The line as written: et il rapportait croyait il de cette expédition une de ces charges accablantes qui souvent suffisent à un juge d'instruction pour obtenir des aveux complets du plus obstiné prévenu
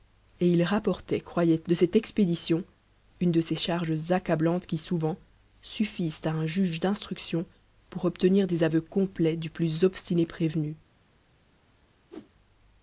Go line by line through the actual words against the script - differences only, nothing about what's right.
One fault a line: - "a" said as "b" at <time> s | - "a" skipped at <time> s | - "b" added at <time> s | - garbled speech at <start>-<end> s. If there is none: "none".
- "il" skipped at 1.6 s